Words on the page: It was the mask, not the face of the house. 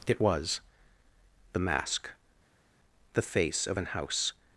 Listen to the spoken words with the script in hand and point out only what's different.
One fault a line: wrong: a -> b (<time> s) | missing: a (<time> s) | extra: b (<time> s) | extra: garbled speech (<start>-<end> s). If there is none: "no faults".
missing: not (2.1 s)
wrong: the -> an (3.8 s)